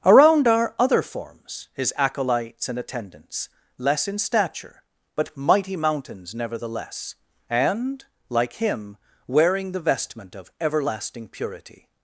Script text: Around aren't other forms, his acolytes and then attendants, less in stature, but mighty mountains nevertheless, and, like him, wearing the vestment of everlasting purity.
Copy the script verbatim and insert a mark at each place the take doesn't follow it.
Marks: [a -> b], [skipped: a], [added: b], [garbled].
Around [aren't -> are] other forms, his acolytes and [skipped: then] attendants, less in stature, but mighty mountains nevertheless, and, like him, wearing the vestment of everlasting purity.